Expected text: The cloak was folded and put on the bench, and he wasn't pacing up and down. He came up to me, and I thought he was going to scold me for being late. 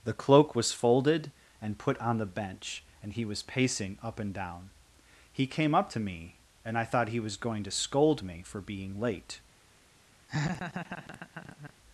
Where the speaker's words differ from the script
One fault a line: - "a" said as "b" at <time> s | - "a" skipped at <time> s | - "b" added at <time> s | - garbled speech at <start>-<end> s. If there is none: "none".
- "wasn't" said as "was" at 3.2 s